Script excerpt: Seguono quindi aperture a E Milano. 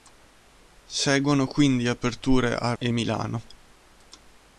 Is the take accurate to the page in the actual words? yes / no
yes